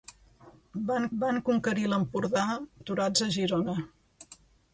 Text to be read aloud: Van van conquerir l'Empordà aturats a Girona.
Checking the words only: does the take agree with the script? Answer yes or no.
yes